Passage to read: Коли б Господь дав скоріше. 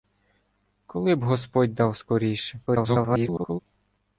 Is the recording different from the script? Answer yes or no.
yes